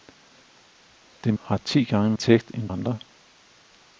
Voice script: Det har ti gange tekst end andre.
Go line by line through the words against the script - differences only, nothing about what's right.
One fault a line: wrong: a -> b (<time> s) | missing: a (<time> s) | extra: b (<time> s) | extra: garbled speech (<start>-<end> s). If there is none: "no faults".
no faults